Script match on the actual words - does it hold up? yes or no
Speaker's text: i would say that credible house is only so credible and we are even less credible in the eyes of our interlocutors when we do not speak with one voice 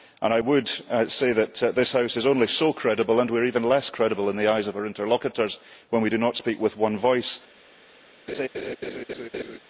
no